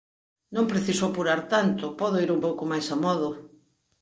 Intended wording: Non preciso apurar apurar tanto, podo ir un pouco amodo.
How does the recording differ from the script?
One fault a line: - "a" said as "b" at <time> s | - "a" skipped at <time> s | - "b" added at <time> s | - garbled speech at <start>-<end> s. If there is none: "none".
- "apurar" skipped at 1.4 s
- "máis" added at 2.7 s